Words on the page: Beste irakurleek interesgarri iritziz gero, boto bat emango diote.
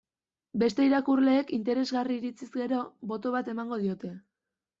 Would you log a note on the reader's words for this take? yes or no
no